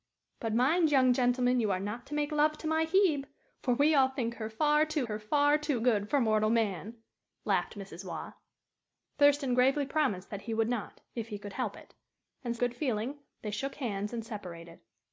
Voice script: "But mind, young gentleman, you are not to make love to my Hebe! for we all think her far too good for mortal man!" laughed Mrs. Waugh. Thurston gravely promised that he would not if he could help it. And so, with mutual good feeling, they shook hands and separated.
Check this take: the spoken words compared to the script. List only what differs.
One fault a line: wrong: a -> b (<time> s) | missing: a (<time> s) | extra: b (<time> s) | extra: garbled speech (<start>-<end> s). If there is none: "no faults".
extra: her far too (5.1 s)
missing: so with mutual (12.6 s)